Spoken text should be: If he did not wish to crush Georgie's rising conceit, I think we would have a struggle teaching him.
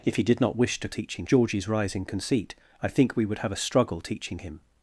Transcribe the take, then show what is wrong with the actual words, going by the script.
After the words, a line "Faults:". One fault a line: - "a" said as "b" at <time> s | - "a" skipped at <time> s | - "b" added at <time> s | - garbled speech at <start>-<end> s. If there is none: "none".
If he did not wish to teaching Georgie's rising conceit, I think we would have a struggle teaching him.
Faults:
- "crush" said as "teaching" at 0.9 s